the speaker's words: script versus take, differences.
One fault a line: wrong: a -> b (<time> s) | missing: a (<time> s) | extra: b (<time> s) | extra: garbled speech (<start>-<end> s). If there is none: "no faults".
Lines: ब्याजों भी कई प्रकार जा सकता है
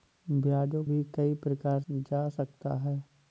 no faults